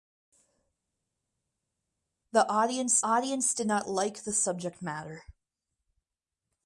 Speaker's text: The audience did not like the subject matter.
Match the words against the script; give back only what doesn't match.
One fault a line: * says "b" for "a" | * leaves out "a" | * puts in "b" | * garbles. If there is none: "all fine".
* puts in "audience"